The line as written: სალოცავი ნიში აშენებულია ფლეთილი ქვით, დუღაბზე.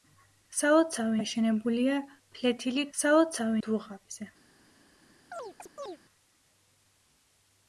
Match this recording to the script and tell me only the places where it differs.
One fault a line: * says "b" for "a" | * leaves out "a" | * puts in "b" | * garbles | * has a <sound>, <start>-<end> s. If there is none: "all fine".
* leaves out "ნიში"
* says "სალოცავი" for "ქვით"
* has a chirp, 5.3-6.0 s